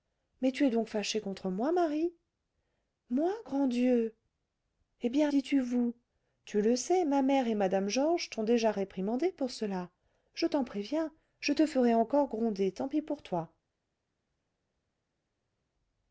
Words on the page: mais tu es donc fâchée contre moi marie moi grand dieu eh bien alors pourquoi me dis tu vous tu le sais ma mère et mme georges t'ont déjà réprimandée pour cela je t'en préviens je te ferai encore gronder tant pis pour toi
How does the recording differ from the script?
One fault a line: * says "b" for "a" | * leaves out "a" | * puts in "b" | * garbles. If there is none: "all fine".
* leaves out "alors pourquoi me"